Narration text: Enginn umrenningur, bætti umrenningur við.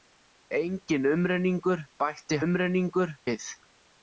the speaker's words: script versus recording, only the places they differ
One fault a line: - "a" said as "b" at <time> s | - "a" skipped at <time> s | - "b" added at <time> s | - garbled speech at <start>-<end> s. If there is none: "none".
none